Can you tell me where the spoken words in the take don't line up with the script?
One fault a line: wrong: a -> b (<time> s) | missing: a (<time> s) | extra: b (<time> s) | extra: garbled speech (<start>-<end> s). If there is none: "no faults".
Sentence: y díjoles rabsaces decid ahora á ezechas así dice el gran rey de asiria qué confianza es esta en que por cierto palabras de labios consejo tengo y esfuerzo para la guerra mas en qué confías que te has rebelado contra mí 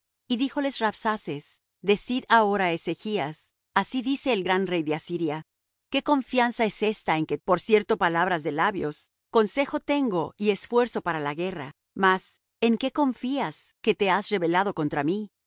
no faults